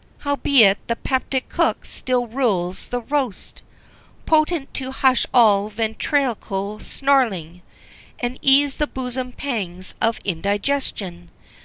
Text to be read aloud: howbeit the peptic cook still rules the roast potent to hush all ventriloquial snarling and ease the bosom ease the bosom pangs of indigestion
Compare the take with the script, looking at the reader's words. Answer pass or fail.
fail